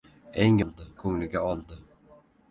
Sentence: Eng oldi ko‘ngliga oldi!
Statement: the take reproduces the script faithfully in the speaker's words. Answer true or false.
true